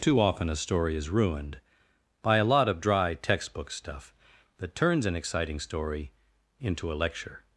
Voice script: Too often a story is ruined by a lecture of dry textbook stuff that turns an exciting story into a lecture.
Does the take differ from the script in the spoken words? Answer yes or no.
yes